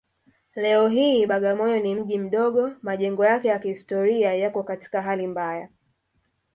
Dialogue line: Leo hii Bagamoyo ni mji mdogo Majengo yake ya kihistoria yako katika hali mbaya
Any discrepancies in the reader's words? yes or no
no